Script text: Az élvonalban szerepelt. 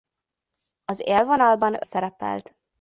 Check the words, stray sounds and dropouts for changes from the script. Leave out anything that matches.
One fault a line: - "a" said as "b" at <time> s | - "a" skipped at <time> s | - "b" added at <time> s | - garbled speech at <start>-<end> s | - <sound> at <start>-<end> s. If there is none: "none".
none